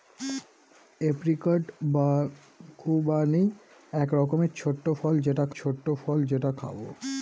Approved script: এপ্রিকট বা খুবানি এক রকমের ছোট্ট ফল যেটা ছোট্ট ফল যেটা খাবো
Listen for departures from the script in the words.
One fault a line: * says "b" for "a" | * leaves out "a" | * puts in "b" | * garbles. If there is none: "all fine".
all fine